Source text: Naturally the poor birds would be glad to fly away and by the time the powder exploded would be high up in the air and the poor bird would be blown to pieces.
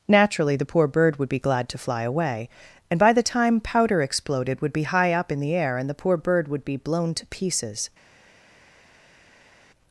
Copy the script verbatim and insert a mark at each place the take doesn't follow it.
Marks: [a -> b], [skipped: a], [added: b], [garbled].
Naturally the poor [birds -> bird] would be glad to fly away and by the time [skipped: the] powder exploded would be high up in the air and the poor bird would be blown to pieces.